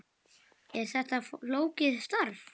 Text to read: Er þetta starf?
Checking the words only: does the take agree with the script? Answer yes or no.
no